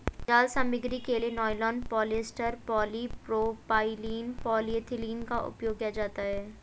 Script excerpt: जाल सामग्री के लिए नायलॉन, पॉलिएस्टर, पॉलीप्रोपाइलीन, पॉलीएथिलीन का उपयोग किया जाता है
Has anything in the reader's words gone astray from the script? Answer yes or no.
no